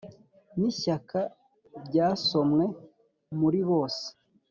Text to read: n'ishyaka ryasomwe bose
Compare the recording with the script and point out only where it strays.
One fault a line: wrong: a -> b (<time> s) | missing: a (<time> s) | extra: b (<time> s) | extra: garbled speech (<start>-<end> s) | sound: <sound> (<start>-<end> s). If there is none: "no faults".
extra: muri (3.4 s)